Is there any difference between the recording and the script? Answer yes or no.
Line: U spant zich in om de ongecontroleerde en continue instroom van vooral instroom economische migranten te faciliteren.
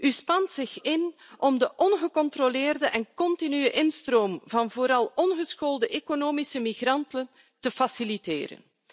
yes